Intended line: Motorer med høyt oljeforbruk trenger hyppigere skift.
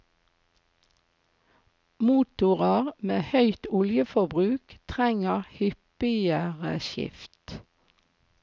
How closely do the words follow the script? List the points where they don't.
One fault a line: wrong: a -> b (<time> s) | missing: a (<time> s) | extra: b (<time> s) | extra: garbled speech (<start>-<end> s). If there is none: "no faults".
no faults